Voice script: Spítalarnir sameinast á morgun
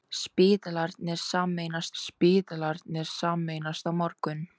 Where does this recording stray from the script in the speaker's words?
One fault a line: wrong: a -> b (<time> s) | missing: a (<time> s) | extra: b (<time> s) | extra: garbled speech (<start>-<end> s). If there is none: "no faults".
extra: spítalarnir sameinast (2.0 s)